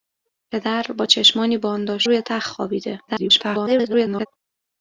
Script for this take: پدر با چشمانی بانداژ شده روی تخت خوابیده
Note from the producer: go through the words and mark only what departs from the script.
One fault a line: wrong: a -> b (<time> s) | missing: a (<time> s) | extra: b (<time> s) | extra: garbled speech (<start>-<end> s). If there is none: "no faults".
missing: شده (2.0 s)
extra: garbled speech (3.1-4.3 s)